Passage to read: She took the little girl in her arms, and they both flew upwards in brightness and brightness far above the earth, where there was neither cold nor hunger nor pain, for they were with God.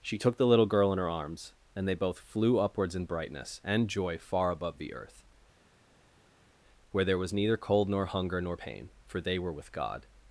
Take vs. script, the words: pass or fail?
fail